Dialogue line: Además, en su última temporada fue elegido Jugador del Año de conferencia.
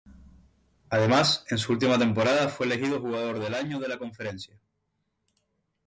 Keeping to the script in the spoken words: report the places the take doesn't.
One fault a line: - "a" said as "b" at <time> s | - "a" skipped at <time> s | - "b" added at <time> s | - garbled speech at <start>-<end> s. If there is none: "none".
- "la" added at 3.9 s